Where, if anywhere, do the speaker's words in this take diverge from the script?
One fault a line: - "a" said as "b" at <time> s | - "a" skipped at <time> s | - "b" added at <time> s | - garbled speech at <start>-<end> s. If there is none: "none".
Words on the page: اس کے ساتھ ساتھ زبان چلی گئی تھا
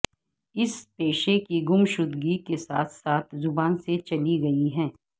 - "پیشے کی گمشدگی" added at 0.9 s
- "سے" added at 3.8 s
- "تھا" said as "ہے" at 4.8 s